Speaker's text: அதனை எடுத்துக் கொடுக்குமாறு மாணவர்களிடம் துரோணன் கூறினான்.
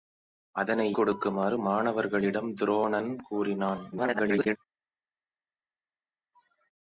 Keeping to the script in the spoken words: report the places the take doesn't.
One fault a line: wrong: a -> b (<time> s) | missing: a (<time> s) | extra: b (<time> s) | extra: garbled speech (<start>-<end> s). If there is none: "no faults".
missing: எடுத்துக் (1.0 s)
extra: garbled speech (3.9-4.6 s)